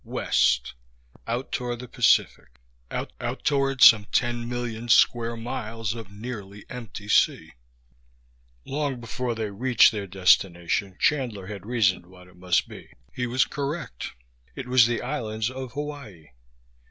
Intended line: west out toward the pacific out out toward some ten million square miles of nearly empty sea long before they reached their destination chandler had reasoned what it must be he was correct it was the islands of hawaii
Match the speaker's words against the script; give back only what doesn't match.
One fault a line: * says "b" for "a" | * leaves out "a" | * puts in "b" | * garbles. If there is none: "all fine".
all fine